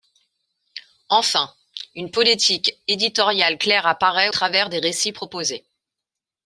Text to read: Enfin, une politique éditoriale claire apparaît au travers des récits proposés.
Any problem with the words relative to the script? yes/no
yes